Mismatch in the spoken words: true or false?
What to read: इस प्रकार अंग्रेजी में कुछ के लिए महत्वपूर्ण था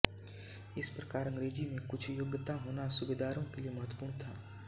true